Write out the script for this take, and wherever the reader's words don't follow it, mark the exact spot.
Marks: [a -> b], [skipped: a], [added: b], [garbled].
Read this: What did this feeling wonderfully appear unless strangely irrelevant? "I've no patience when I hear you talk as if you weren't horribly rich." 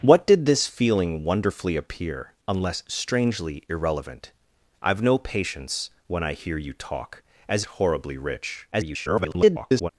What did this feeling wonderfully appear unless strangely irrelevant? "I've no patience when I hear you talk as [skipped: if you weren't] horribly rich." [garbled]